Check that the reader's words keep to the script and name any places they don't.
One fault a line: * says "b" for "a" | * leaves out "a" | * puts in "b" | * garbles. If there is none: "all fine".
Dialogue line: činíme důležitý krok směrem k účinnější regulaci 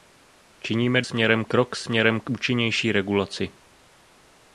* says "směrem" for "důležitý"